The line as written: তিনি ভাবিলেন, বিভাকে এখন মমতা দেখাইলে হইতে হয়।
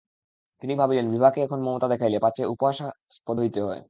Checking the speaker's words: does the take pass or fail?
fail